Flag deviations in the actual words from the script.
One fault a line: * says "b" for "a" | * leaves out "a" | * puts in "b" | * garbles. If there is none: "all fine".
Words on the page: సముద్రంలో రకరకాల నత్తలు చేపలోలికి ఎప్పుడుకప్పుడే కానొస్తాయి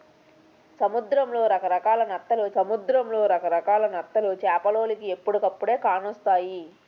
* puts in "సముద్రంలో రకరకాల నత్తలు"